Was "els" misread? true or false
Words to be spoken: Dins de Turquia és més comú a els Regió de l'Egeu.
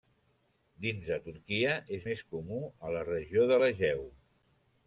true